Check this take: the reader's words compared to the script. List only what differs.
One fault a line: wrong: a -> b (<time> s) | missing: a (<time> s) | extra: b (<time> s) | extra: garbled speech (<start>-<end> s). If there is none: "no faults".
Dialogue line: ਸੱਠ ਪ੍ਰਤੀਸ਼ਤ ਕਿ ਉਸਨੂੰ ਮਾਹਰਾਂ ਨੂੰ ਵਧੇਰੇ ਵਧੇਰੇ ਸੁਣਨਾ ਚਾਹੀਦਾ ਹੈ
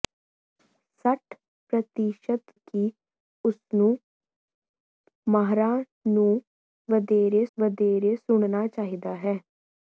no faults